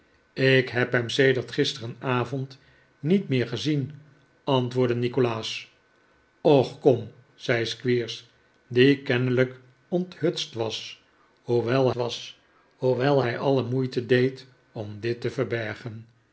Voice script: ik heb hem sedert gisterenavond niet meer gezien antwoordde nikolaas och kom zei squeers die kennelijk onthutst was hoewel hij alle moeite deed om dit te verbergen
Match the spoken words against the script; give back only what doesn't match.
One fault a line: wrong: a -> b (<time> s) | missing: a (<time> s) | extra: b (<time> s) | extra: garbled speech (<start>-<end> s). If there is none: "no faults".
extra: was hoewel (11.9 s)